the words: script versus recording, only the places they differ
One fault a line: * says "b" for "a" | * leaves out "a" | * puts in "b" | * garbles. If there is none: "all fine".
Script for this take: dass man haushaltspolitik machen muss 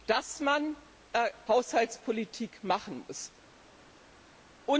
all fine